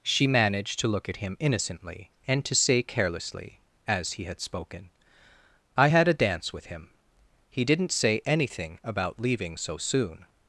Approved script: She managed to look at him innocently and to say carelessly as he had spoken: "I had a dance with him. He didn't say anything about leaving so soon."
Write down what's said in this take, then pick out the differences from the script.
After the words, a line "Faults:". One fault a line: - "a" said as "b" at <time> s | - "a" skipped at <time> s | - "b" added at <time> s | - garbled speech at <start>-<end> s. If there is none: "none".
She managed to look at him innocently and to say carelessly as he had spoken: "I had a dance with him. He didn't say anything about leaving so soon."
Faults:
none